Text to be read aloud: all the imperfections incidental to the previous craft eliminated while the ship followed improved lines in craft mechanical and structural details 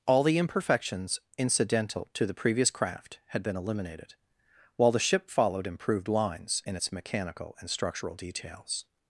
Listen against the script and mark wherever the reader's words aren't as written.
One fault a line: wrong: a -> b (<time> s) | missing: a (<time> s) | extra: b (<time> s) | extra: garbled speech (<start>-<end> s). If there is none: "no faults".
extra: had been (3.3 s)
wrong: craft -> its (6.7 s)